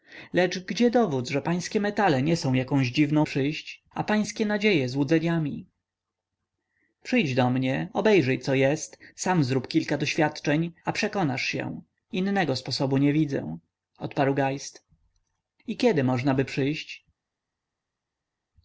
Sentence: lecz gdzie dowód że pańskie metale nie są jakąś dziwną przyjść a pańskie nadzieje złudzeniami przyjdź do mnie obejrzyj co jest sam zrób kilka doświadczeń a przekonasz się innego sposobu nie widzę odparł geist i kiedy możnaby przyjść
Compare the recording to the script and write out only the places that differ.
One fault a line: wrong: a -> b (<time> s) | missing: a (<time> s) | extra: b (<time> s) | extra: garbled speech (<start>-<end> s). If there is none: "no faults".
no faults